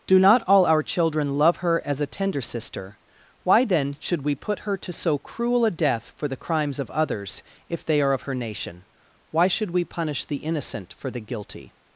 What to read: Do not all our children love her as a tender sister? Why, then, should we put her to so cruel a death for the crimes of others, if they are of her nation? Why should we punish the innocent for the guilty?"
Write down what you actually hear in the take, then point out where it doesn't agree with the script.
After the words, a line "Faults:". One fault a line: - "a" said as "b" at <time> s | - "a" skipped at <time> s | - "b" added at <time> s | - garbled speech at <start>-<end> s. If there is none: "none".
Do not all our children love her as a tender sister? Why, then, should we put her to so cruel a death for the crimes of others, if they are of her nation? Why should we punish the innocent for the guilty?"
Faults:
none